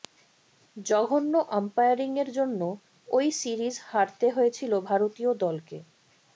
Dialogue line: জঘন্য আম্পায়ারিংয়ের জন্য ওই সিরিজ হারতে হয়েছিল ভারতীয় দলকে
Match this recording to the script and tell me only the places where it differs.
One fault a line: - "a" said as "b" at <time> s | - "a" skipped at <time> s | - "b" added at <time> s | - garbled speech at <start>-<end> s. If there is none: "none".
none